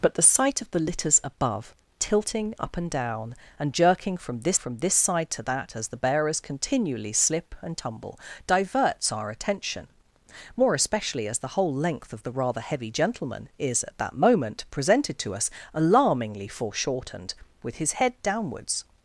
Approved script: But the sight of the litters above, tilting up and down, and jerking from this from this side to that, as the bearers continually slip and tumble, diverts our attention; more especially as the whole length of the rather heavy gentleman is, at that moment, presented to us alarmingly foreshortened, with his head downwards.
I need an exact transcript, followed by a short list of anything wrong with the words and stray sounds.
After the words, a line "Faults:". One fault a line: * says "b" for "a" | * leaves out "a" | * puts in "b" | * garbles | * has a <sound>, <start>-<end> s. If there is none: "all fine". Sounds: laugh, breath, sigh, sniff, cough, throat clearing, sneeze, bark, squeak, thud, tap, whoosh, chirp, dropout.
But the sight of the litters above, tilting up and down, and jerking from this from this side to that, as the bearers continually slip and tumble, diverts our attention; more especially as the whole length of the rather heavy gentleman is, at that moment, presented to us alarmingly foreshortened, with his head downwards.
Faults:
all fine